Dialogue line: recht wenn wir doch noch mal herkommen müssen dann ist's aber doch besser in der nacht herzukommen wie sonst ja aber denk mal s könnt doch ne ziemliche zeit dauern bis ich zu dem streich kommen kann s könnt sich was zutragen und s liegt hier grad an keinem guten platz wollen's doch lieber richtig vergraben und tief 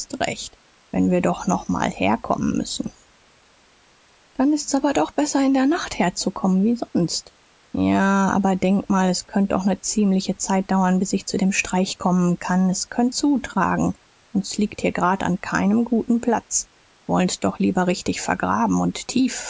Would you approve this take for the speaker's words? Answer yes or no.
no